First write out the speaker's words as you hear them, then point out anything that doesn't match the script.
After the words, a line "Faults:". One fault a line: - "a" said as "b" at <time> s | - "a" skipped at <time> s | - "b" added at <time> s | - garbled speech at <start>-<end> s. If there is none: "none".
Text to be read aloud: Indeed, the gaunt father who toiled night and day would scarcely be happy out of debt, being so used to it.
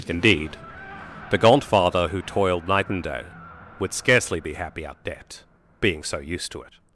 Indeed, the gaunt father who toiled night and day would scarcely be happy out debt, being so used to it.
Faults:
- "of" skipped at 5.0 s